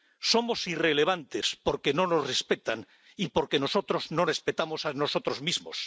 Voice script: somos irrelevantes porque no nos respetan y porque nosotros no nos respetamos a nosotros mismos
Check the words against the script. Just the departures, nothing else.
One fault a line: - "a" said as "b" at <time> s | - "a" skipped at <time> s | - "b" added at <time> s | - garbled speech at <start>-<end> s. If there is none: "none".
- "nos" skipped at 4.2 s